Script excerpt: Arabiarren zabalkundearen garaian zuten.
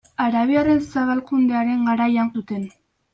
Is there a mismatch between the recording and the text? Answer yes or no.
no